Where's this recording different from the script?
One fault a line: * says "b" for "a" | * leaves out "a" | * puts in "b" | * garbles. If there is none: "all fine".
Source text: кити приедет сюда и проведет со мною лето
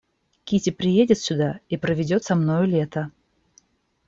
all fine